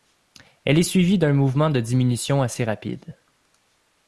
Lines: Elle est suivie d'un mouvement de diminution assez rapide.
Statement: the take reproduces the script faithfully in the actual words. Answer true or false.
true